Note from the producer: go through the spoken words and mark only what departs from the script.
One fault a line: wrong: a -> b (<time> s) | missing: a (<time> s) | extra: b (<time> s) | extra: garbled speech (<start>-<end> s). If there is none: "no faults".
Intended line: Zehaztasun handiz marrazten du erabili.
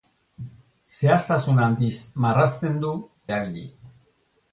no faults